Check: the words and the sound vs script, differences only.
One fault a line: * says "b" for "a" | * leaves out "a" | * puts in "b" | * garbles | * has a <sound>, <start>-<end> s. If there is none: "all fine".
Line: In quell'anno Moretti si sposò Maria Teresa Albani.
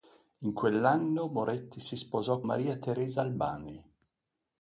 all fine